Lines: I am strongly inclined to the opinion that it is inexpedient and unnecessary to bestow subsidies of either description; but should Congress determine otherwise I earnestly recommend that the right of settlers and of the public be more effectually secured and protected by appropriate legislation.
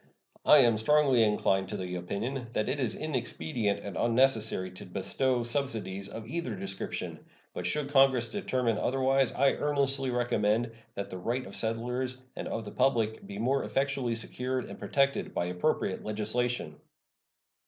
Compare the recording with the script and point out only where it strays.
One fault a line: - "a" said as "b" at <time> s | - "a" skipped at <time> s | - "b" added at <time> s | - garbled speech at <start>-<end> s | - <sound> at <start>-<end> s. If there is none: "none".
none